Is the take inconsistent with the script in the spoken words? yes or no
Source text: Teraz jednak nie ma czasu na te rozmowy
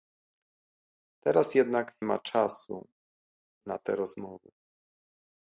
yes